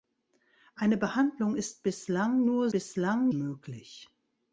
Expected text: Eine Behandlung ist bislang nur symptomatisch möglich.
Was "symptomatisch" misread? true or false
true